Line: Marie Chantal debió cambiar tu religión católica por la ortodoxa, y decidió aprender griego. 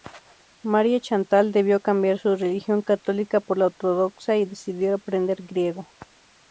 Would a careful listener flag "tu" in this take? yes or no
yes